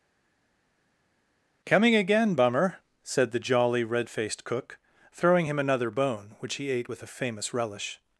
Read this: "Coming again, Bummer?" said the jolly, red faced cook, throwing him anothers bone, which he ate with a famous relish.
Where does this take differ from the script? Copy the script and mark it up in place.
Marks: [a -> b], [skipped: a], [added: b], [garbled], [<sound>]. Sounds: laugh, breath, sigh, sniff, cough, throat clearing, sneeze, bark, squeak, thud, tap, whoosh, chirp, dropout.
"Coming again, Bummer?" said the jolly, red faced cook, throwing him [anothers -> another] bone, which he ate with a famous relish.